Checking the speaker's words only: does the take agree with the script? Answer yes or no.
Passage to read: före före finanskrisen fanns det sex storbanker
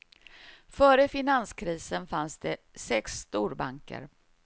no